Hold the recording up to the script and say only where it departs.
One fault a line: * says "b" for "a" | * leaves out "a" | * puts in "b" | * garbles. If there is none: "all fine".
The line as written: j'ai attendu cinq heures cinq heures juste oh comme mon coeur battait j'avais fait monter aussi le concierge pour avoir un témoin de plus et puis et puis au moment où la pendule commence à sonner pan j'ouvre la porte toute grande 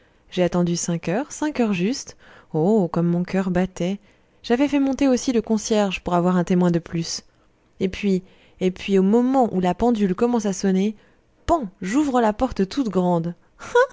all fine